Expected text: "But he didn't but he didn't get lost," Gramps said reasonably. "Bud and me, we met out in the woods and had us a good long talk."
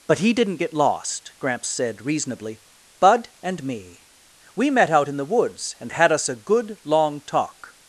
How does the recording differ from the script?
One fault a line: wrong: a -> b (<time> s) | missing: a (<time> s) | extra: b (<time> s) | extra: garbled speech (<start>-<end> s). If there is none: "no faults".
missing: but he didn't (0.6 s)